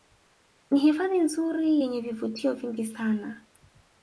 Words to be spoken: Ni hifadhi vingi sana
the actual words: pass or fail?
fail